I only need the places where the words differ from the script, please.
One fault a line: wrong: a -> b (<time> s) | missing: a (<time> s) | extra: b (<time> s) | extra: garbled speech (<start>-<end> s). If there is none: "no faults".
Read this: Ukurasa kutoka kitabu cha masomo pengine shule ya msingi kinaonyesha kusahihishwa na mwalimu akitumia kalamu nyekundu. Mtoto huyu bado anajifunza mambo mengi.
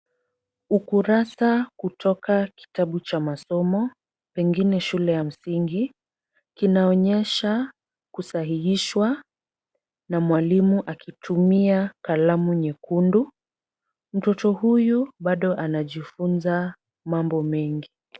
no faults